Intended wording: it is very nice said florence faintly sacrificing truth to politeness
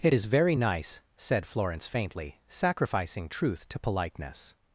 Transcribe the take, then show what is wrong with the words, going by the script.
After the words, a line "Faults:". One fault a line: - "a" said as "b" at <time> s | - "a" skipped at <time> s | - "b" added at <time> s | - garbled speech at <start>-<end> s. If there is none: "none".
it is very nice said florence faintly sacrificing truth to politeness
Faults:
none